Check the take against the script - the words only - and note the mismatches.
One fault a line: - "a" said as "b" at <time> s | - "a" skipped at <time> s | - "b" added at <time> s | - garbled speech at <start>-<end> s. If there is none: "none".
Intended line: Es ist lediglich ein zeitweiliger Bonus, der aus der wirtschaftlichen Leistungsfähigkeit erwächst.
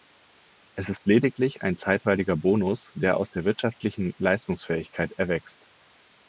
none